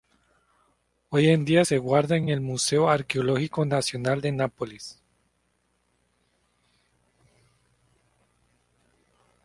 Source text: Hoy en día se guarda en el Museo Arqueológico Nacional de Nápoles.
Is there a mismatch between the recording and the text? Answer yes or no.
yes